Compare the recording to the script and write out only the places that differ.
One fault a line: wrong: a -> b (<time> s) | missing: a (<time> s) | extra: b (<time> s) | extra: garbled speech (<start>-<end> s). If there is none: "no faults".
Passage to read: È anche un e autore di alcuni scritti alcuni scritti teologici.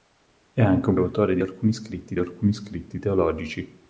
no faults